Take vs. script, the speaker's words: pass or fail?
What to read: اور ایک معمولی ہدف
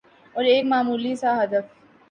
fail